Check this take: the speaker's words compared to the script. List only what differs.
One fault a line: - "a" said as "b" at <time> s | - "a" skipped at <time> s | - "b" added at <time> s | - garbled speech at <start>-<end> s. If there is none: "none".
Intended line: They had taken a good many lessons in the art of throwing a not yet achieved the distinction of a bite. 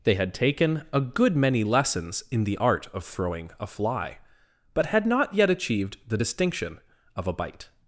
- "fly but had" added at 3.7 s